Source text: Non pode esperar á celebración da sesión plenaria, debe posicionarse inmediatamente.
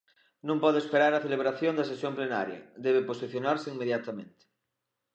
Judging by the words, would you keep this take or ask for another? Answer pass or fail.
pass